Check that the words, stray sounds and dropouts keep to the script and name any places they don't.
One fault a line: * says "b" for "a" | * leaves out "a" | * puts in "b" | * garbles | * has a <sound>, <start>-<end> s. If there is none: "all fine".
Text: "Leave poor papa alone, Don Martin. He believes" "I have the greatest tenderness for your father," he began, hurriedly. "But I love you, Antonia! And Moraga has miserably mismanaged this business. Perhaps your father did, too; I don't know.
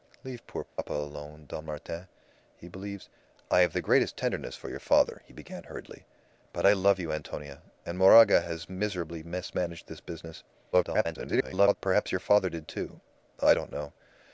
* has a dropout, 0.7-0.8 s
* garbles